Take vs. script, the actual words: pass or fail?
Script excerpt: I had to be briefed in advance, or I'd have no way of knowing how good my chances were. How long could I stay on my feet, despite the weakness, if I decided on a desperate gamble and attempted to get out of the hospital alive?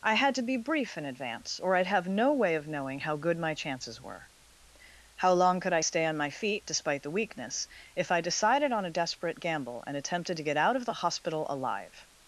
fail